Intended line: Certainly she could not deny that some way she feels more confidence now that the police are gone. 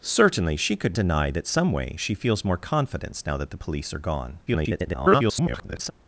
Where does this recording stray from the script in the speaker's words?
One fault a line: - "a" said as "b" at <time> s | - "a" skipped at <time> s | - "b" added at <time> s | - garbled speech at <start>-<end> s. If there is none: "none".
- "not" skipped at 1.0 s
- garbled speech at 4.5-5.9 s